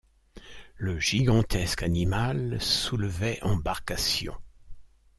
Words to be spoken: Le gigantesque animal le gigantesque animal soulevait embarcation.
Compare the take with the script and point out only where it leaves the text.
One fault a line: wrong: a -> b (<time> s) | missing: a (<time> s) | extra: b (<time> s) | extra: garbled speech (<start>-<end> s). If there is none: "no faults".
missing: le gigantesque animal (2.6 s)